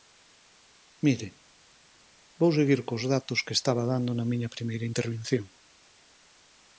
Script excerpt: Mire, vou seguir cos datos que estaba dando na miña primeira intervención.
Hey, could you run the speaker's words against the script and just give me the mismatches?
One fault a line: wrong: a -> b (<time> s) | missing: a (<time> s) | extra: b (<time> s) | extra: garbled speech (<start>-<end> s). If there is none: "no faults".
no faults